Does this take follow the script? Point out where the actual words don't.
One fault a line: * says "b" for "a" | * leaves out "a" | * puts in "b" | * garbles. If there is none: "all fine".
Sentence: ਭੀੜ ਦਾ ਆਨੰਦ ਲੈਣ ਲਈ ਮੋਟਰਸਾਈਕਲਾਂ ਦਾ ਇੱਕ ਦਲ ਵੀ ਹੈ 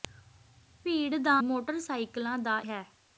* leaves out "ਆਨੰਦ ਲੈਣ ਲਈ"
* leaves out "ਇੱਕ ਦਲ ਵੀ"